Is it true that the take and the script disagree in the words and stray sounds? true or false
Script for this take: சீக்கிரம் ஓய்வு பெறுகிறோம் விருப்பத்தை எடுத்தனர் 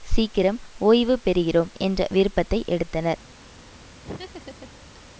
true